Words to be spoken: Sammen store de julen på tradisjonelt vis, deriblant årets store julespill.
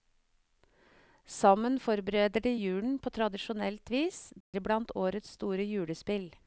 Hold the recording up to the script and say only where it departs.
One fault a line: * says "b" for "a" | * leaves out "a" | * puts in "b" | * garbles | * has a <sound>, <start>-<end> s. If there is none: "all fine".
* says "forbereder" for "store"
* has a dropout, 4.4-4.5 s